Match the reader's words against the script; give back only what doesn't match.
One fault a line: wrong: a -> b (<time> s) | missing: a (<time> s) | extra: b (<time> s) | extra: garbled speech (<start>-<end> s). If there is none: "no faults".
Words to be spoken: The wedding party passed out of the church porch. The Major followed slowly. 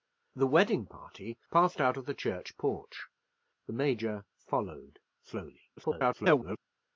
extra: garbled speech (5.8-6.6 s)